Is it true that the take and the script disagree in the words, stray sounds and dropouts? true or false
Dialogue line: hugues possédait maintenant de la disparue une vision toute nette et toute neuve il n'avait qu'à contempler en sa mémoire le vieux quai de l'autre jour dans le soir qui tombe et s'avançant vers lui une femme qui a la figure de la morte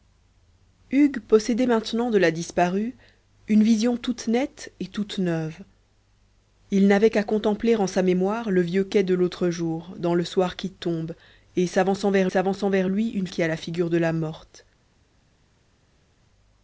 true